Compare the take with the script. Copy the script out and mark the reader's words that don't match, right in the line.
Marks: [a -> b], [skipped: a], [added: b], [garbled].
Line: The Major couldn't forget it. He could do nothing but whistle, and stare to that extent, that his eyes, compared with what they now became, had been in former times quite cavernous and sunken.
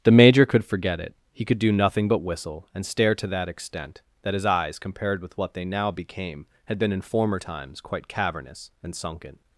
The Major [couldn't -> could] forget it. He could do nothing but whistle, and stare to that extent, that his eyes, compared with what they now became, had been in former times quite cavernous and sunken.